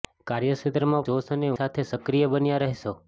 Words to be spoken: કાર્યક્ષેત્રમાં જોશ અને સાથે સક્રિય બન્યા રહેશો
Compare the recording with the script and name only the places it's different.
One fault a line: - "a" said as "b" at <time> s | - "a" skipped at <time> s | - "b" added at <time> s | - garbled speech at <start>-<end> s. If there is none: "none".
none